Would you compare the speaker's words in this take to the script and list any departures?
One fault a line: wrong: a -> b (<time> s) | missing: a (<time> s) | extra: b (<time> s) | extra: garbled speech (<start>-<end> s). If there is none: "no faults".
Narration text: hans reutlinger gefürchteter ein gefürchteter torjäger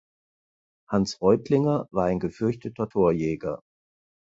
wrong: gefürchteter -> war (1.9 s)